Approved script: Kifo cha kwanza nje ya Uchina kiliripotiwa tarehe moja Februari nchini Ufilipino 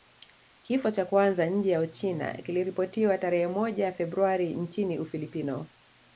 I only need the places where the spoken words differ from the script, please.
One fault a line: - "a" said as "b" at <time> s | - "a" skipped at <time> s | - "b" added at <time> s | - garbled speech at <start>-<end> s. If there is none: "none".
none